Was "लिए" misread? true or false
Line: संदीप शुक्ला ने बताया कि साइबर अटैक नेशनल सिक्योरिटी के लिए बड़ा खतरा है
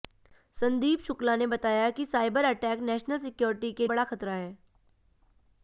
true